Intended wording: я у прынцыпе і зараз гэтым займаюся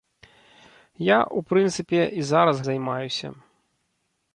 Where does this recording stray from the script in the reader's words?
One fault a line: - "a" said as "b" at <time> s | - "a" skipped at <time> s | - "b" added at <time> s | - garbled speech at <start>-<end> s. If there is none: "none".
- "гэтым" skipped at 2.6 s